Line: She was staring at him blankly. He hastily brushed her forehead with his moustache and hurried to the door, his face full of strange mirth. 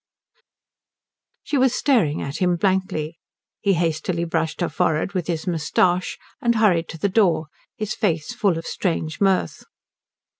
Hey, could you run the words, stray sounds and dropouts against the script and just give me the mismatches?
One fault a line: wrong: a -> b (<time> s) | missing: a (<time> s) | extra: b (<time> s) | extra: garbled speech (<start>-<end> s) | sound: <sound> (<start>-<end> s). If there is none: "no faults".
no faults